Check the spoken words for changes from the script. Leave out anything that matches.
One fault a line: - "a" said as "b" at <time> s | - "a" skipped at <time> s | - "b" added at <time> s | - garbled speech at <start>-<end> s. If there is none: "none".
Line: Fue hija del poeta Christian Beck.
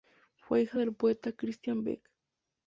none